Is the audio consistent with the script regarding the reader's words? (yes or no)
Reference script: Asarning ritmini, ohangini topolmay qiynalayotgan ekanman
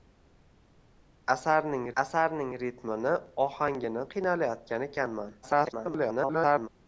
no